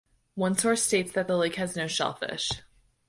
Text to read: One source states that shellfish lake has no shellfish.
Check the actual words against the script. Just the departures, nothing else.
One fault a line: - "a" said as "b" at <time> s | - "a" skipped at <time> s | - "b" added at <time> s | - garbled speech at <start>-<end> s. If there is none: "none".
- "shellfish" said as "the" at 1.3 s